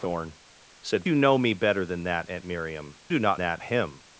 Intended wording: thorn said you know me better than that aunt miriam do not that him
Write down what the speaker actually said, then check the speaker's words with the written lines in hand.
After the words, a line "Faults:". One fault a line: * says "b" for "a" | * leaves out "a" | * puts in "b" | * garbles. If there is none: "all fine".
thorn said you know me better than that aunt miriam do not that him
Faults:
all fine